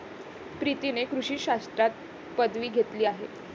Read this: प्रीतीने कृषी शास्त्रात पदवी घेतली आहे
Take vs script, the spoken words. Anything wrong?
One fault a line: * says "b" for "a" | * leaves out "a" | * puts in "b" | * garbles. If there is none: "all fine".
all fine